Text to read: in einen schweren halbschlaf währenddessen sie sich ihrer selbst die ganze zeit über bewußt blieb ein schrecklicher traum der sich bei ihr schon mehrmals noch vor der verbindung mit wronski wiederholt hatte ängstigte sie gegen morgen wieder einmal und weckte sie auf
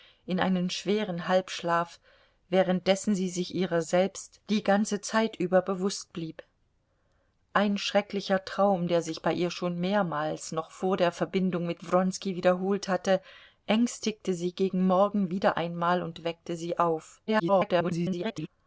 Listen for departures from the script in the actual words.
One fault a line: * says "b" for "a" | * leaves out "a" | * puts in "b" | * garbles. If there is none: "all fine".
* garbles